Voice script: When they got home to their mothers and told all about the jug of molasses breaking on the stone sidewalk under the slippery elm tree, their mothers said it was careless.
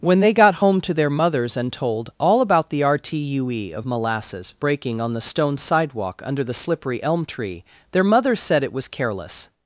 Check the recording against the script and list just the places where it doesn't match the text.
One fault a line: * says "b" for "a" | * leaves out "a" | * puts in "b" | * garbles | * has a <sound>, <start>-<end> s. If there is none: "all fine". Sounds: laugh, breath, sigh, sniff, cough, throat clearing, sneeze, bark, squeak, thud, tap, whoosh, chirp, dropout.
* says "rtue" for "jug"